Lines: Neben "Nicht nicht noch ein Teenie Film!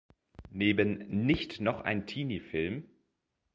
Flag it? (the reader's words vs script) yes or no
yes